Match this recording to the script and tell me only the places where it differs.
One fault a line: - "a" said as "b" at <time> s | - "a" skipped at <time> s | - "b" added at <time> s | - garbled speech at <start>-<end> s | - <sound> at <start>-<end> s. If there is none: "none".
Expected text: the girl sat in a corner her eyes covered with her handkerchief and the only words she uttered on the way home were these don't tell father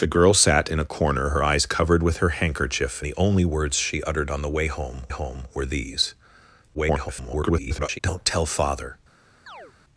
- "and" skipped at 3.0 s
- "home" added at 5.1 s
- garbled speech at 6.7-8.0 s
- chirp at 9.5-9.7 s